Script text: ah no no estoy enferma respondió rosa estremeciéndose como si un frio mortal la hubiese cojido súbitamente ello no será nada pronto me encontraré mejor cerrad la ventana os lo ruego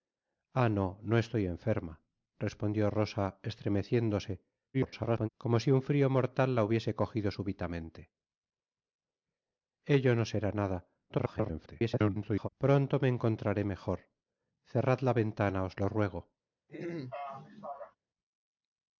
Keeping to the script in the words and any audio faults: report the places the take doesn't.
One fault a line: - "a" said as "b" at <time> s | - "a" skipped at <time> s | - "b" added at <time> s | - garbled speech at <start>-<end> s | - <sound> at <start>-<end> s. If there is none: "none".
- garbled speech at 4.7-5.3 s
- garbled speech at 11.1-12.5 s
- throat clearing at 16.7-18.0 s